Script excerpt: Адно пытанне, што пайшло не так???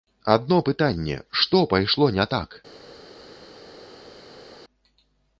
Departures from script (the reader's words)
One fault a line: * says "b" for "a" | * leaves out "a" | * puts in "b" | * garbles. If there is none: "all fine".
all fine